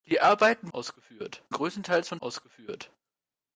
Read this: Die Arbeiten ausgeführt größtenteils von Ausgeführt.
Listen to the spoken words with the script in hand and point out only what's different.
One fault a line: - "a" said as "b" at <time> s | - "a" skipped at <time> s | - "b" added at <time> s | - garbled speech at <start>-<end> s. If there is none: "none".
none